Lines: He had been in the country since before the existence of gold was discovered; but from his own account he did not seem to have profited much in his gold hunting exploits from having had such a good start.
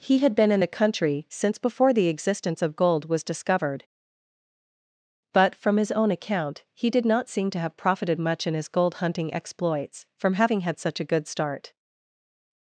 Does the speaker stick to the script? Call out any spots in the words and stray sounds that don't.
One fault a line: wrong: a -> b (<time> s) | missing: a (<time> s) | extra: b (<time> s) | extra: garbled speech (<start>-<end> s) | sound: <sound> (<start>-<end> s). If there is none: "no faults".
no faults